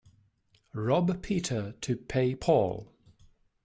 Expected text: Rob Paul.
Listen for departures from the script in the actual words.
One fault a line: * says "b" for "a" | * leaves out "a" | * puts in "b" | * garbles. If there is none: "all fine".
* puts in "Peter to pay"